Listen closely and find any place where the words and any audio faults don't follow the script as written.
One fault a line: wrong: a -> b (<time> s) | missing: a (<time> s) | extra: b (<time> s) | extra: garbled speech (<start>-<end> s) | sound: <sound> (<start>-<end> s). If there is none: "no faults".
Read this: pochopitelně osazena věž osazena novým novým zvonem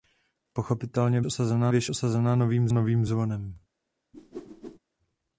sound: whoosh (4.1-4.8 s)